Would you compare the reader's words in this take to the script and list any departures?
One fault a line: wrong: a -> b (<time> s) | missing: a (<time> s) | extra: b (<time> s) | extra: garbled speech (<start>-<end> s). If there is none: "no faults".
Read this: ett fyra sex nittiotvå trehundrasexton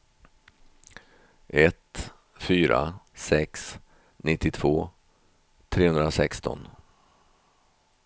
no faults